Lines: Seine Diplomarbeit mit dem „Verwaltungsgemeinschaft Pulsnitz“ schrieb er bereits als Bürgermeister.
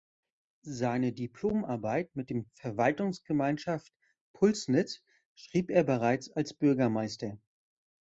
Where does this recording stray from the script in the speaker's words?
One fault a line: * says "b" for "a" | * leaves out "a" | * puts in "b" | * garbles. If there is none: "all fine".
all fine